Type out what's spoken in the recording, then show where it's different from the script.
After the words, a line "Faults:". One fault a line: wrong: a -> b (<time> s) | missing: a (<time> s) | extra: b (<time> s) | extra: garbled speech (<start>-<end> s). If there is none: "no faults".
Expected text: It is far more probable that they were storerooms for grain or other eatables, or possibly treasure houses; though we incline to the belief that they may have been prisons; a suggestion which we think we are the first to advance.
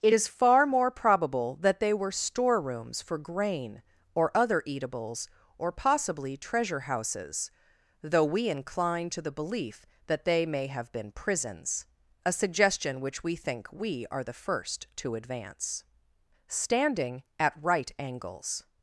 It is far more probable that they were storerooms for grain or other eatables, or possibly treasure houses; though we incline to the belief that they may have been prisons; a suggestion which we think we are the first to advance. Standing at right angles
Faults:
extra: Standing at right angles (16.5 s)